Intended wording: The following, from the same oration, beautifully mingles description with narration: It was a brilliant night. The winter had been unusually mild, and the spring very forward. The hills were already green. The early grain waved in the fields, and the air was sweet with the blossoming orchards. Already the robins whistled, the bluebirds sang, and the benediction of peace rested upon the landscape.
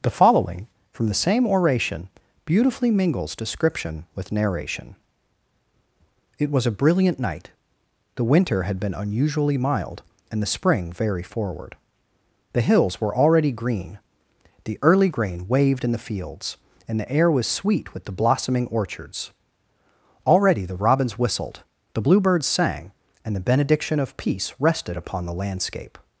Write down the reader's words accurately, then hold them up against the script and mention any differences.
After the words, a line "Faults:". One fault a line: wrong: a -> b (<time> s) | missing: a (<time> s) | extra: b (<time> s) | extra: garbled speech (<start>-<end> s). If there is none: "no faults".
The following, from the same oration, beautifully mingles description with narration: It was a brilliant night. The winter had been unusually mild, and the spring very forward. The hills were already green. The early grain waved in the fields, and the air was sweet with the blossoming orchards. Already the robins whistled, the bluebirds sang, and the benediction of peace rested upon the landscape.
Faults:
no faults